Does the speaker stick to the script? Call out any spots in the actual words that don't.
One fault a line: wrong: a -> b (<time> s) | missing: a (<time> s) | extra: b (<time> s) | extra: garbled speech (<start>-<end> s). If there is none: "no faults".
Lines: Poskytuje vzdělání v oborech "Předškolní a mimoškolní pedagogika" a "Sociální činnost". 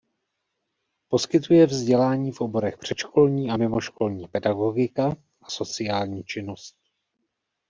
no faults